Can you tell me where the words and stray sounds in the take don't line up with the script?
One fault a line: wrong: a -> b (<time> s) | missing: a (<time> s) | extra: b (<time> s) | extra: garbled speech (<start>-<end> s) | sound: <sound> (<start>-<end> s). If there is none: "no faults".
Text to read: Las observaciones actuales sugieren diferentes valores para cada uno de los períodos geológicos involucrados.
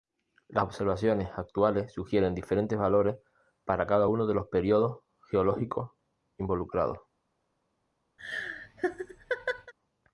sound: laugh (8.2-9.7 s)